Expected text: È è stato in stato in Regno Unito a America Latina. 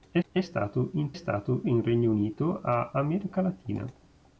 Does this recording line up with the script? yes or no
yes